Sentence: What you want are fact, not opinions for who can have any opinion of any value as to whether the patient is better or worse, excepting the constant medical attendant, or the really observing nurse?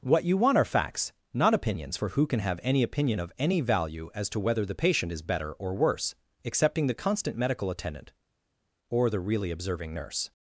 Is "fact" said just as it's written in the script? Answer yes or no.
no